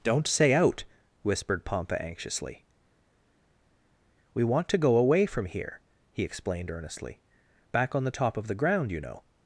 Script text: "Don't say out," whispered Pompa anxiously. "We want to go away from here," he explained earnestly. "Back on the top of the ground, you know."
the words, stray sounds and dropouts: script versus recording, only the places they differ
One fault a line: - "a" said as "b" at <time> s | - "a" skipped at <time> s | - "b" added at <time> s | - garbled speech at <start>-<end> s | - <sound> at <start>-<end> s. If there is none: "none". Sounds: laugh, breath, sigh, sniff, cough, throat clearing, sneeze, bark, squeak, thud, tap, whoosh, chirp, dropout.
none